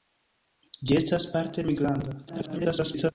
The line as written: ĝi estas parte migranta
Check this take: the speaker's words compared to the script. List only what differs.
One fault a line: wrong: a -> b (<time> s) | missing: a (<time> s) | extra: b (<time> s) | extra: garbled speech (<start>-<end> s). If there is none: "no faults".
extra: garbled speech (2.3-3.1 s)